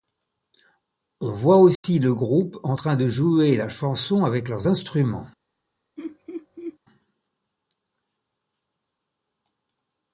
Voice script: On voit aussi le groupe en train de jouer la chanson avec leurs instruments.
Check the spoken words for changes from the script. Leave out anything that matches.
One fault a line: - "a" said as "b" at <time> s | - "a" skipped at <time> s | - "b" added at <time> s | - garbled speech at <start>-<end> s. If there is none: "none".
none